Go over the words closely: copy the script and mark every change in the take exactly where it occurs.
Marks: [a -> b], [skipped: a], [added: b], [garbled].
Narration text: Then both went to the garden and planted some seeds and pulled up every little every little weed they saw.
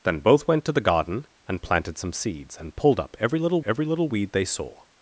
Then both went to the garden and planted some seeds and pulled up every little every little weed they saw.